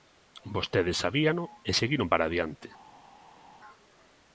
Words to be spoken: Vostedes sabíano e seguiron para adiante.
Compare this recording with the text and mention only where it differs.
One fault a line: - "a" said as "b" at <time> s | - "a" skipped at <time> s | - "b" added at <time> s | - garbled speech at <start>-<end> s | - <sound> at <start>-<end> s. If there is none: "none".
none